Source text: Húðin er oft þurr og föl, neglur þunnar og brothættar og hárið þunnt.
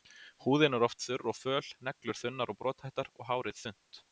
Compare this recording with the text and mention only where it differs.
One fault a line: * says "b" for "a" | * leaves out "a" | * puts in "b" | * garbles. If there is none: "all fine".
all fine